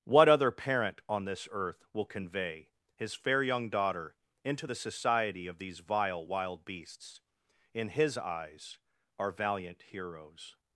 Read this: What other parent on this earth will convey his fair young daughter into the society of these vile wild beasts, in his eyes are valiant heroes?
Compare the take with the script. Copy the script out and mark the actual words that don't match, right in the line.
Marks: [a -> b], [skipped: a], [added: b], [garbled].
What other parent on this earth will convey his fair young daughter into the society of these vile wild beasts, in his eyes are valiant heroes?